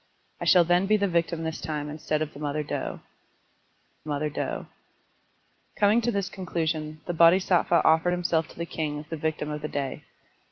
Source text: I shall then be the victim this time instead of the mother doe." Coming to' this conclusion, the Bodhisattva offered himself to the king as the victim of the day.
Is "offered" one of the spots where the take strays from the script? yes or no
no